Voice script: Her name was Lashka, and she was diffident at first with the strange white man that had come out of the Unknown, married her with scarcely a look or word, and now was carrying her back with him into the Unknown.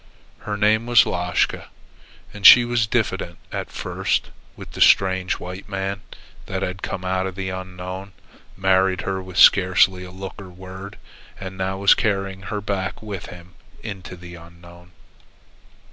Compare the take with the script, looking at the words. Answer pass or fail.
pass